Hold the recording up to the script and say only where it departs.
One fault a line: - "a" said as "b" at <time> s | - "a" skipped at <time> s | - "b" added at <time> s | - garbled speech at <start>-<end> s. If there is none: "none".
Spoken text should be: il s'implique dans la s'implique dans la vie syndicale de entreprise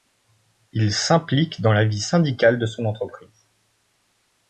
- "s'implique dans la" skipped at 1.9 s
- "son" added at 2.6 s